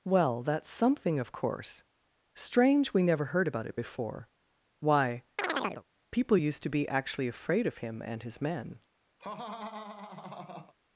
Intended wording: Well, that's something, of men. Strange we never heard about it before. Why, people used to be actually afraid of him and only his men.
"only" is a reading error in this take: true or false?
true